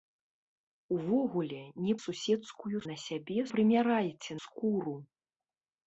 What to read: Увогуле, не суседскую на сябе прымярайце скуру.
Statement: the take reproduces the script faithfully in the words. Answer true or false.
true